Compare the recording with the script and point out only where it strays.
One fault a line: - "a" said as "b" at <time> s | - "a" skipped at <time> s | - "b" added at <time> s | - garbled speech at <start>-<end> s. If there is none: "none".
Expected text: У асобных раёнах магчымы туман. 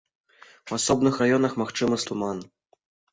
none